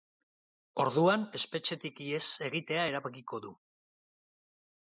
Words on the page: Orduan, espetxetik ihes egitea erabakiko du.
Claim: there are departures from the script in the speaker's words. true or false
false